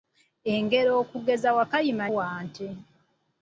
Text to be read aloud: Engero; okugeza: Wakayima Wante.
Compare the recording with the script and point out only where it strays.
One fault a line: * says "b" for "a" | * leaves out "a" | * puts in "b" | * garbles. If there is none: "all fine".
all fine